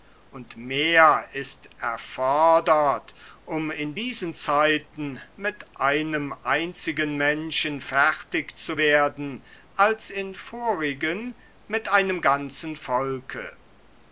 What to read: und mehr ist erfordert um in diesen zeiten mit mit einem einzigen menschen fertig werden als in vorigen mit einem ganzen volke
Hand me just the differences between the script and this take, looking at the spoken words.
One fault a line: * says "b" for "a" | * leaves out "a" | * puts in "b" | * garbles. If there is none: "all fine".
* leaves out "mit"
* puts in "zu"